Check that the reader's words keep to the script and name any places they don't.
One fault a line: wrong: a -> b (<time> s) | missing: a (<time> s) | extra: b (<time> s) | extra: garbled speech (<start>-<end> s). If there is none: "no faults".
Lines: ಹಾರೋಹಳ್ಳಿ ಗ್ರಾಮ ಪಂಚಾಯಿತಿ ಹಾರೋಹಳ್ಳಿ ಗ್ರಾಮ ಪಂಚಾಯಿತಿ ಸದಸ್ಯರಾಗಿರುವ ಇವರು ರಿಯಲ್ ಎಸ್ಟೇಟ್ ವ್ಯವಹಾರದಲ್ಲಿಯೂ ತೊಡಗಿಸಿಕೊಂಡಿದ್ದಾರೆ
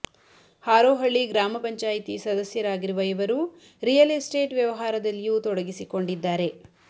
missing: ಹಾರೋಹಳ್ಳಿ ಗ್ರಾಮ ಪಂಚಾಯಿತಿ (2.1 s)